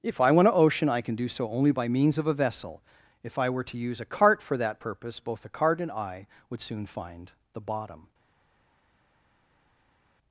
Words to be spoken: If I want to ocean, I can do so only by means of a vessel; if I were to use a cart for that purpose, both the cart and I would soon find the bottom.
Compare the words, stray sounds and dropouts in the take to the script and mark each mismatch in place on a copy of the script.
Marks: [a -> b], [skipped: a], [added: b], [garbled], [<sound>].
If I want to ocean, I can do so only by means of a vessel; if I were to use a cart for that purpose, both the cart and I would soon find the bottom.